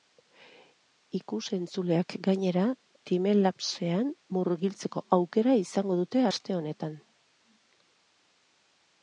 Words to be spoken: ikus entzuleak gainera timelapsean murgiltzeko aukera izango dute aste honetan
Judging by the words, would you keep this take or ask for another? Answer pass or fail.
pass